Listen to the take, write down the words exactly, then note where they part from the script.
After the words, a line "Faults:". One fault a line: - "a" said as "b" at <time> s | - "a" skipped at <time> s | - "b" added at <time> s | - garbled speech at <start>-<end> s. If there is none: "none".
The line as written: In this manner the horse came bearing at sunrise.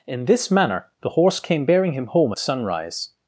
In this manner the horse came bearing him home at sunrise.
Faults:
- "him home" added at 1.9 s